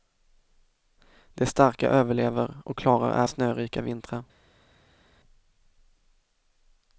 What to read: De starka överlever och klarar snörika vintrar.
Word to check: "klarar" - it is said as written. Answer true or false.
true